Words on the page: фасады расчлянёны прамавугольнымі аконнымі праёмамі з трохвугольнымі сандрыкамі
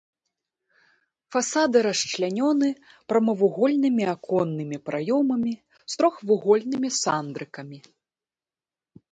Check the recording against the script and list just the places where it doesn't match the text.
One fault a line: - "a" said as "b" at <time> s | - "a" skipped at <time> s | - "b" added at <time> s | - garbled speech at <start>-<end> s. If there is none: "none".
none